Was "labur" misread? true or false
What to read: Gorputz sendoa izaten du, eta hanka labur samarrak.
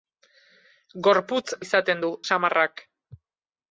true